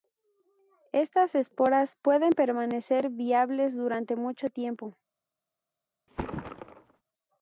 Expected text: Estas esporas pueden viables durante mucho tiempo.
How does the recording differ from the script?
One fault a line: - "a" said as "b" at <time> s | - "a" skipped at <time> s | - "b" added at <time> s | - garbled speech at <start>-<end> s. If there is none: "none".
- "permanecer" added at 2.3 s